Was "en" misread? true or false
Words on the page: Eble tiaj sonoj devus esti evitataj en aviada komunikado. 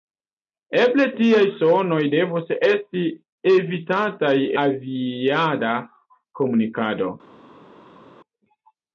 true